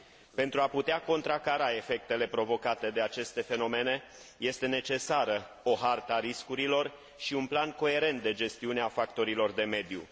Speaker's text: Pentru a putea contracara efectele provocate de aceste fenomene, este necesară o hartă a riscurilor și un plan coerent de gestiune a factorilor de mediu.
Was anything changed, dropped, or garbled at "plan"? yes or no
no